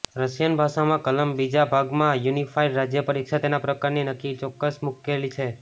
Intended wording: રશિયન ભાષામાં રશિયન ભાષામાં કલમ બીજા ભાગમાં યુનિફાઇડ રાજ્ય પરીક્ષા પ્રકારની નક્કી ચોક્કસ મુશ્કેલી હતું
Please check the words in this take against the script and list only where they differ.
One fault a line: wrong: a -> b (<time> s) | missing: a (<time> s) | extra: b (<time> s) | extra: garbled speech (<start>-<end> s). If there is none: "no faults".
missing: રશિયન ભાષામાં (1.0 s)
extra: તેના (3.4 s)
wrong: હતું -> છે (5.4 s)